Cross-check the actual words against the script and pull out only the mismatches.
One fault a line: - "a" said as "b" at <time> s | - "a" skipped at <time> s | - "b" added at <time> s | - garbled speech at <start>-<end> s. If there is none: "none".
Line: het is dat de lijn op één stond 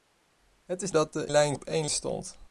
none